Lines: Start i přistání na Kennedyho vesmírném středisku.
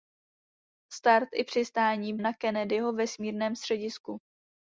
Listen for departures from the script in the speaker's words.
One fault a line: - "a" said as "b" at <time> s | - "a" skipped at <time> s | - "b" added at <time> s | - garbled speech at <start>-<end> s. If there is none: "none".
none